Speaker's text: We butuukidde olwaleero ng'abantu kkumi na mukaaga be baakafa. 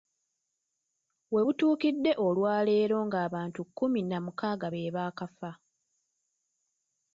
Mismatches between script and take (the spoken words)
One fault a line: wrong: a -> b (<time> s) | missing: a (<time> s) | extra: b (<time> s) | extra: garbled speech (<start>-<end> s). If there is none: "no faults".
no faults